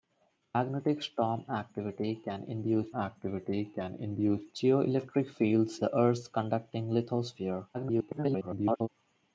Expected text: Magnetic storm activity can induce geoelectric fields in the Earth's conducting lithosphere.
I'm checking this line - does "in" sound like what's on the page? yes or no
no